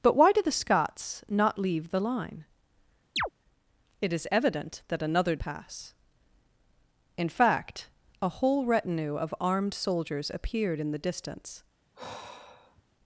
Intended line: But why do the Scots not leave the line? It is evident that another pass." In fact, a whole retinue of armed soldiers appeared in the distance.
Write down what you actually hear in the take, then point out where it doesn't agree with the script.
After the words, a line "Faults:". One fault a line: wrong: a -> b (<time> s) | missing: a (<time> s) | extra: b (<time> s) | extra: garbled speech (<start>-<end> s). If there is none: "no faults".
But why do the Scots not leave the line? It is evident that another pass." In fact, a whole retinue of armed soldiers appeared in the distance.
Faults:
no faults